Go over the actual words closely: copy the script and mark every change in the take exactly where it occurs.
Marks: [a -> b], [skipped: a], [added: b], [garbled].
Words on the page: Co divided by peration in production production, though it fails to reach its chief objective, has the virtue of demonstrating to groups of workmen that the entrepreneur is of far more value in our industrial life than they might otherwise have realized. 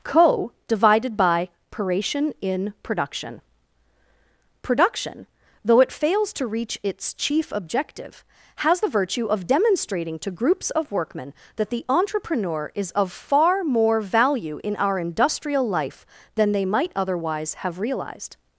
Co divided by peration in production production, though it fails to reach its chief objective, has the virtue of demonstrating to groups of workmen that the entrepreneur is of far more value in our industrial life than they might otherwise have realized.